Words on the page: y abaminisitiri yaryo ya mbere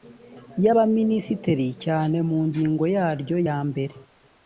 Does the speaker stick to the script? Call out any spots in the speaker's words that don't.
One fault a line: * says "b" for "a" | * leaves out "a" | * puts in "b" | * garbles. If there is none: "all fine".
* puts in "cyane mu ngingo"